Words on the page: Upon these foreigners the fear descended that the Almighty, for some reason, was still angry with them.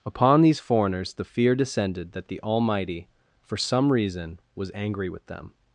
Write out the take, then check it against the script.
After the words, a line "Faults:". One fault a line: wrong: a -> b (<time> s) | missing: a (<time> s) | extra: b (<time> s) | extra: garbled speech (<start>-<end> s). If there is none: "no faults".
Upon these foreigners the fear descended that the Almighty, for some reason, was angry with them.
Faults:
missing: still (4.7 s)